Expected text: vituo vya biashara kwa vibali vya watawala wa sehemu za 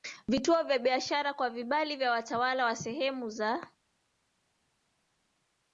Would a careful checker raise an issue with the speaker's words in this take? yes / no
no